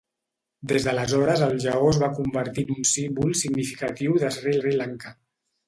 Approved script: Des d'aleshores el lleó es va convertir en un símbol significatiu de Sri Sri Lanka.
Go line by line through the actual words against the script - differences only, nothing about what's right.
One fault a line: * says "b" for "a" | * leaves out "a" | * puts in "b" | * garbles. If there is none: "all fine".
all fine